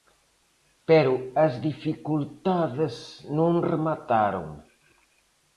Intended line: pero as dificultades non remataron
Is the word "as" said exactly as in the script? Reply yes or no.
yes